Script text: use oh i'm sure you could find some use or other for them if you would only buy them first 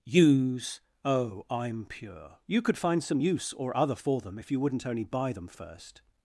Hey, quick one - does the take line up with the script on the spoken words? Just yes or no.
no